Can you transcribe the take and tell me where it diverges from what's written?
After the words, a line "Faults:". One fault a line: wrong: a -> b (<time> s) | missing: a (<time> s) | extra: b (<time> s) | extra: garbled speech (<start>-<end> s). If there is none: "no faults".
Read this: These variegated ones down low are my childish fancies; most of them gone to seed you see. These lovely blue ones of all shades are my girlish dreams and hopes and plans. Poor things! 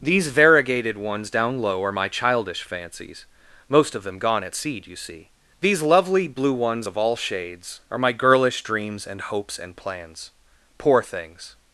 These variegated ones down low are my childish fancies; most of them gone at seed you see. These lovely blue ones of all shades are my girlish dreams and hopes and plans. Poor things!
Faults:
wrong: to -> at (4.4 s)